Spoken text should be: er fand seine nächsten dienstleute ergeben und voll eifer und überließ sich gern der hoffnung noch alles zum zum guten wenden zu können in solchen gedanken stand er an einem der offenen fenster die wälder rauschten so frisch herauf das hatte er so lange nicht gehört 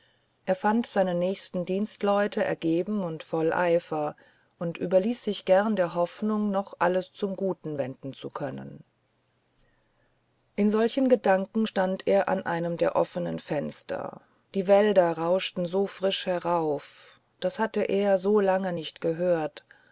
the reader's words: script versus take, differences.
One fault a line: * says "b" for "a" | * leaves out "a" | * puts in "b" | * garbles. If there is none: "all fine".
* leaves out "zum"